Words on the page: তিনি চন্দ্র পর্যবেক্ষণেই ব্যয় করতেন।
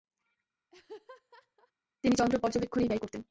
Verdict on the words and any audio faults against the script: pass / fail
fail